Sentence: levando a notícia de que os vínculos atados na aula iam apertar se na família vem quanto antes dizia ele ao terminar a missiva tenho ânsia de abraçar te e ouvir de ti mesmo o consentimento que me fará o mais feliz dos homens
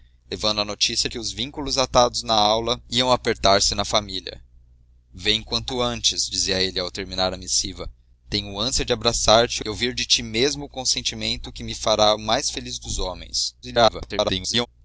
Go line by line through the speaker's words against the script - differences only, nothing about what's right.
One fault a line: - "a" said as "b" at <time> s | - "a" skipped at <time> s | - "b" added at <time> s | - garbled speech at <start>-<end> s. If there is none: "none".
- "de" skipped at 1.1 s
- garbled speech at 13.6-14.7 s